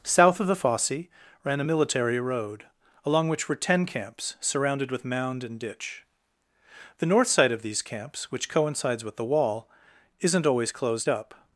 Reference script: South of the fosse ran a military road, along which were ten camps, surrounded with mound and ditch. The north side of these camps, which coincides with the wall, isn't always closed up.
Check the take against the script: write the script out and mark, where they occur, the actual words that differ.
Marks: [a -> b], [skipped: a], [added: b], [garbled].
South of the fosse ran a military road, along which were ten camps, surrounded with mound and ditch. The north side of these camps, which coincides with the wall, isn't always closed up.